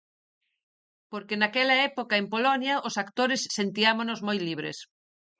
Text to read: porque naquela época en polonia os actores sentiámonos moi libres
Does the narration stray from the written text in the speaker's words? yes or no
no